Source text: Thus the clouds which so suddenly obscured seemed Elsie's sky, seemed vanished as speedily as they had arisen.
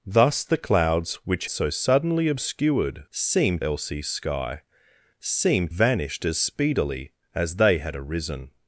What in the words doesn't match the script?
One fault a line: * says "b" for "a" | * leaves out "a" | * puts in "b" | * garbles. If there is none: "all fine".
all fine